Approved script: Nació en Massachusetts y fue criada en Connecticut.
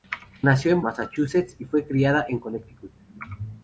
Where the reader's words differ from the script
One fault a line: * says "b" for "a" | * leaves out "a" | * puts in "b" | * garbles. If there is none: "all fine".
all fine